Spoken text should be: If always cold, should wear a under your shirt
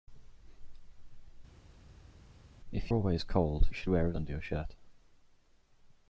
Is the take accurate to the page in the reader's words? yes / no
yes